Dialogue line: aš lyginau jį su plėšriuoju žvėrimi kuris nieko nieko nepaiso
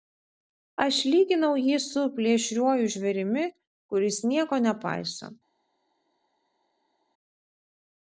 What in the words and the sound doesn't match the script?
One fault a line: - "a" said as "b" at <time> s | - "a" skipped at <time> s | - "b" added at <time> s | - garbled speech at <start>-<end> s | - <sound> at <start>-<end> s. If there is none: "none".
- "nieko" skipped at 4.6 s